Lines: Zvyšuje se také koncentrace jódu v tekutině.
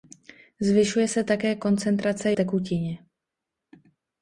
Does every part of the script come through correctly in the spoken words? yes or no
no